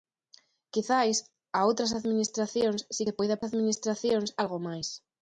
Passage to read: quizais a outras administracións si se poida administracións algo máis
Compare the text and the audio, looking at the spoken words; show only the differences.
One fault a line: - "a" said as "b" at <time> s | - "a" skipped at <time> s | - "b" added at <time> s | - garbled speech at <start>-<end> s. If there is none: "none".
none